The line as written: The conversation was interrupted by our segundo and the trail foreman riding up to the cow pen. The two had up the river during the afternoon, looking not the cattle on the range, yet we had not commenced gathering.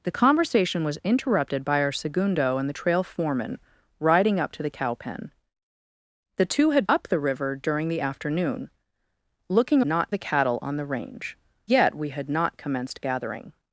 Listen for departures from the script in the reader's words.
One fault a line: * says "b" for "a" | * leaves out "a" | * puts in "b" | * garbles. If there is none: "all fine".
all fine